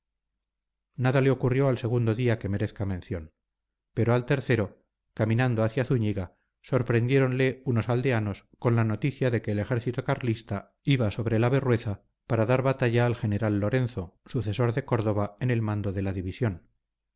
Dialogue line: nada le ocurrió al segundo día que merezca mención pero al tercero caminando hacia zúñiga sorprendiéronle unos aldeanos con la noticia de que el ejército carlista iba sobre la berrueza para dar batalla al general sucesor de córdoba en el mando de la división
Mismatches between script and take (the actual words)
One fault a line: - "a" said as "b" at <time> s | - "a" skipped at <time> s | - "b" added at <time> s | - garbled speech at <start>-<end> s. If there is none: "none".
- "lorenzo" added at 13.6 s